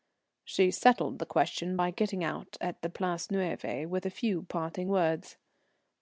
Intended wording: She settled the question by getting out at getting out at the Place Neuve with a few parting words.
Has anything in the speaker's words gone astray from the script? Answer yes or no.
yes